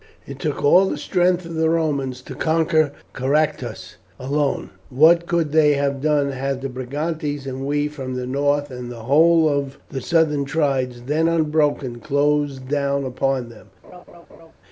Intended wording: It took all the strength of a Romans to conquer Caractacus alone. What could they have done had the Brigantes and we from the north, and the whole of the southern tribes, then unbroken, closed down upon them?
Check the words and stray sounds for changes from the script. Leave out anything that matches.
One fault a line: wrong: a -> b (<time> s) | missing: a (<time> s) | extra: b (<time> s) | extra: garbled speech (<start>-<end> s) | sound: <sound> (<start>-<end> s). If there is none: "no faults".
wrong: a -> the (1.6 s)
sound: laugh (13.8-14.5 s)